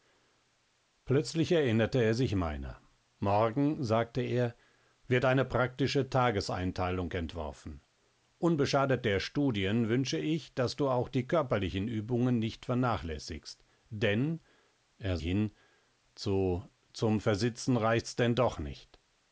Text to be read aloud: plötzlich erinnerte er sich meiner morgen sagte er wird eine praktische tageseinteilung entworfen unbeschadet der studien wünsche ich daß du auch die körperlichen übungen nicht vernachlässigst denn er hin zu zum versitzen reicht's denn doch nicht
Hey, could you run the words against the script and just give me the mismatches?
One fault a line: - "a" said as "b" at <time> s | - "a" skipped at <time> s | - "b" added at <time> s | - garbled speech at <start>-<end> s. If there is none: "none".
none